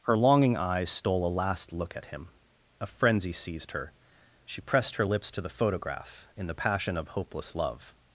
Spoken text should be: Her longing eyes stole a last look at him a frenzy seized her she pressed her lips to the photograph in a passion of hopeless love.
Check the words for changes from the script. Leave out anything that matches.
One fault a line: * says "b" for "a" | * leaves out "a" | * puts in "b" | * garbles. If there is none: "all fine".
* says "the" for "a"